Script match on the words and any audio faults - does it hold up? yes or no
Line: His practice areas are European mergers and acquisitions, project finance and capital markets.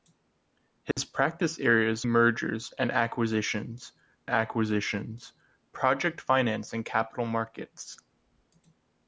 no